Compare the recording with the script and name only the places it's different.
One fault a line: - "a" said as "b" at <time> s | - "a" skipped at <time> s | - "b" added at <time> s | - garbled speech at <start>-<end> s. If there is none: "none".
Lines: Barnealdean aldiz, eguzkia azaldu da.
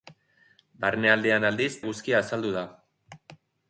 none